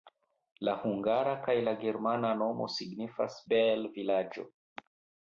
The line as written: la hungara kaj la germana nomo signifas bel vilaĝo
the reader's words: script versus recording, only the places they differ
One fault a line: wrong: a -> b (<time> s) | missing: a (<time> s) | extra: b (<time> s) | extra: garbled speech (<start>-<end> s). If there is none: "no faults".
no faults